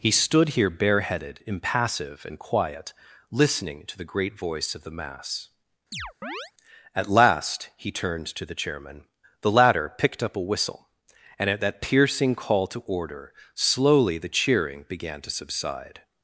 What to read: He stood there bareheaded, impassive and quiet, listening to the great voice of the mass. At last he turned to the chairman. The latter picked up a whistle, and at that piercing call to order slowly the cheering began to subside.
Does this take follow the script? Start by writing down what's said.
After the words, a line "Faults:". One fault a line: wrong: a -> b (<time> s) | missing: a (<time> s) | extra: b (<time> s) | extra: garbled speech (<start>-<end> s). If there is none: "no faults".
He stood here bareheaded, impassive and quiet, listening to the great voice of the mass. At last he turned to the chairman. The latter picked up a whistle, and at that piercing call to order slowly the cheering began to subside.
Faults:
wrong: there -> here (0.5 s)